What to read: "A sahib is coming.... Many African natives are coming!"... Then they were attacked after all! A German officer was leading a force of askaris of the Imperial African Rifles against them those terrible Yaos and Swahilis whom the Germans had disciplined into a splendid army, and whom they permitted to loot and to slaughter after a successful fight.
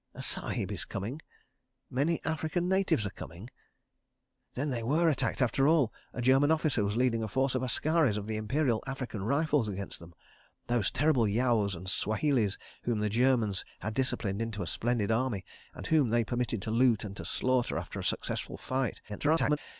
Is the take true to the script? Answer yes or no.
no